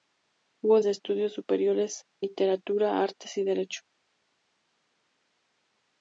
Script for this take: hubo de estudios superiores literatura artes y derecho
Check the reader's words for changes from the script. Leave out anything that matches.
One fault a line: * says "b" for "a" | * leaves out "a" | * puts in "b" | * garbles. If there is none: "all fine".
all fine